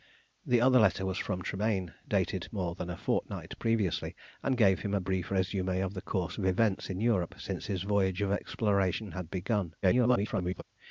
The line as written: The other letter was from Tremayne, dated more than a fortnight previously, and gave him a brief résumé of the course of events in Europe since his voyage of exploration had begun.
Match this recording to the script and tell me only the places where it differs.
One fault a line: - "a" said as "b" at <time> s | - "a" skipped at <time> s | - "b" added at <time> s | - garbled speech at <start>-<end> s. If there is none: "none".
- garbled speech at 9.8-10.6 s